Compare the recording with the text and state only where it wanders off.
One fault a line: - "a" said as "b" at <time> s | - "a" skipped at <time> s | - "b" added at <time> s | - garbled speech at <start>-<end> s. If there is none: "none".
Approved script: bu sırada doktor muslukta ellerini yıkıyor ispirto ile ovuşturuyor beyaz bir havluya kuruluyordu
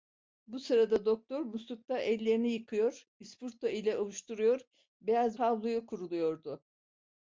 - "bir" skipped at 5.4 s